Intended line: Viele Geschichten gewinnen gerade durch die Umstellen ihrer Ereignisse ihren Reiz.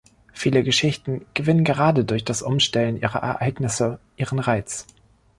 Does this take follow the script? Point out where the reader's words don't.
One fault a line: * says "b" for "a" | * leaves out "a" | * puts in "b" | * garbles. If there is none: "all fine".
* says "das" for "die"